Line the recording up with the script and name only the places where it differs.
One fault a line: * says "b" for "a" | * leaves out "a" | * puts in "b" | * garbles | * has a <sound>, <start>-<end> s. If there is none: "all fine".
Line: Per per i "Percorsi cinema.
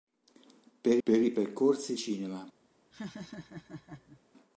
* has a laugh, 2.9-4.2 s